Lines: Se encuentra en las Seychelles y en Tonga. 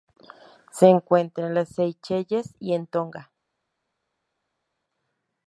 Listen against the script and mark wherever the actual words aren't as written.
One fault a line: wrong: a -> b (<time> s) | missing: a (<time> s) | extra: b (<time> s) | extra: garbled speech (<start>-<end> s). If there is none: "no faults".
no faults